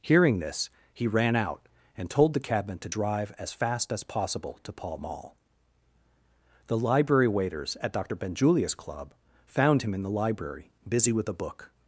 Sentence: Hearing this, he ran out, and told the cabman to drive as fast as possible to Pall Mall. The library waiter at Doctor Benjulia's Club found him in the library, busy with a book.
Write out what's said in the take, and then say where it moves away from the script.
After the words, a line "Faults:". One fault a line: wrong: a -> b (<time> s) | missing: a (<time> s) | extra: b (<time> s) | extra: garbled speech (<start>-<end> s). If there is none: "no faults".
Hearing this, he ran out, and told the cabman to drive as fast as possible to Pall Mall. The library waiters at Doctor Benjulia's Club found him in the library, busy with a book.
Faults:
wrong: waiter -> waiters (7.3 s)